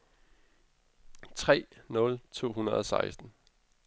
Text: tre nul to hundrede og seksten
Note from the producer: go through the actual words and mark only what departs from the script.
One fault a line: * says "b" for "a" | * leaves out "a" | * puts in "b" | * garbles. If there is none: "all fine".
all fine